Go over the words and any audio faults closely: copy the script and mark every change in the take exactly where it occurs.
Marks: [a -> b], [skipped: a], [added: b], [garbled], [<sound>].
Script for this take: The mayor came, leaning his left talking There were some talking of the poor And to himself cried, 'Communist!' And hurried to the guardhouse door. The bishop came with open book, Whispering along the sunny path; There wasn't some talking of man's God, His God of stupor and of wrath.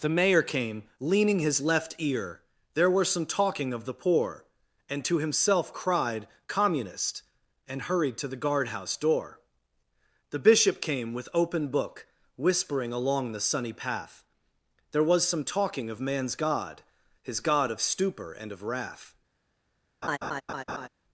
The mayor came, leaning his left [talking -> ear] There were some talking of the poor And to himself cried, 'Communist!' And hurried to the guardhouse door. The bishop came with open book, Whispering along the sunny path; There [wasn't -> was] some talking of man's God, His God of stupor and of wrath. [laugh]